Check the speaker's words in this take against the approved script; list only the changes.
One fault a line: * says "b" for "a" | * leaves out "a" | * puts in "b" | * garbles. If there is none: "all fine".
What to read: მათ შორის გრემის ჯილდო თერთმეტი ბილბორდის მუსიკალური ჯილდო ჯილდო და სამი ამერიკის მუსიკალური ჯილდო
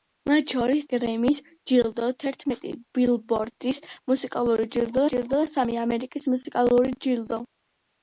all fine